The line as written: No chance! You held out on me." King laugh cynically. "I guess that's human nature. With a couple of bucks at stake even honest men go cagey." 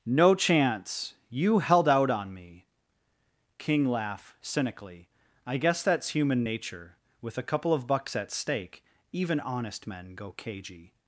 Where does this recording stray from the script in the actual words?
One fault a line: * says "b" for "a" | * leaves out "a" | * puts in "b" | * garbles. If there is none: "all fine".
all fine